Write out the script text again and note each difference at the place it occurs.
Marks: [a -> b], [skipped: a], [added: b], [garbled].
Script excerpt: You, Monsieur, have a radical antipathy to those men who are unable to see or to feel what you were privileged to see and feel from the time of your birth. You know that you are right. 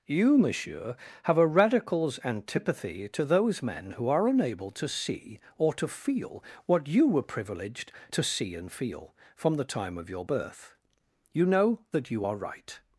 You, Monsieur, have a [radical -> radicals] antipathy to those men who are unable to see or to feel what you were privileged to see and feel from the time of your birth. You know that you are right.